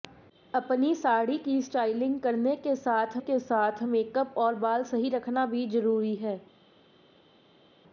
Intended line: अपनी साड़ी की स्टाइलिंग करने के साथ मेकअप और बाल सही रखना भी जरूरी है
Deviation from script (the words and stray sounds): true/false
true